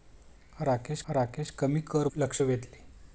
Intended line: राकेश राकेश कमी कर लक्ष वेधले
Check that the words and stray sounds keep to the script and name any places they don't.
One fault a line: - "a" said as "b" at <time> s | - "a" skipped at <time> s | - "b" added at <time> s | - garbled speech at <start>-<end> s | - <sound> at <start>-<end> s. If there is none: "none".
none